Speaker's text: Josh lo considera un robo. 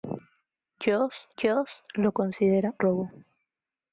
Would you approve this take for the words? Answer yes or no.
no